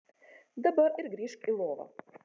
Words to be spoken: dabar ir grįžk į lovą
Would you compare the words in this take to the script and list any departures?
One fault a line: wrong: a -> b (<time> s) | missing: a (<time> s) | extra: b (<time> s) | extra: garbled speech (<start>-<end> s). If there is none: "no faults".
no faults